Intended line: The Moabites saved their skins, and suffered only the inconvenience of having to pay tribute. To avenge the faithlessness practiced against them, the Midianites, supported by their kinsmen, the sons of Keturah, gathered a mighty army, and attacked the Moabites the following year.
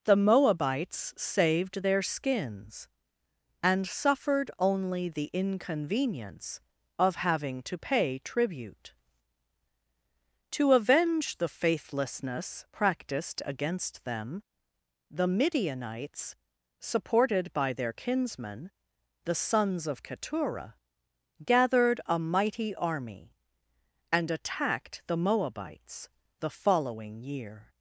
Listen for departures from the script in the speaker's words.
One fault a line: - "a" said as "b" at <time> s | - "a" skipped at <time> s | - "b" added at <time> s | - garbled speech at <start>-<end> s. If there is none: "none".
none